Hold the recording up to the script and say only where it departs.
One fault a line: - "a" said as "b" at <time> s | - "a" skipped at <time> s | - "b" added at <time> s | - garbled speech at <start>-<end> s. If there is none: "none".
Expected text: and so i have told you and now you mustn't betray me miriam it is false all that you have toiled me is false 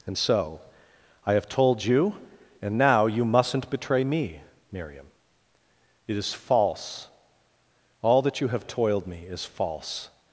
none